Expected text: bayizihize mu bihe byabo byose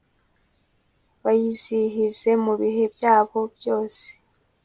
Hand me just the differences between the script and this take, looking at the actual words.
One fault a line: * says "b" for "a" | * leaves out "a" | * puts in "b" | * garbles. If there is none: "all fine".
all fine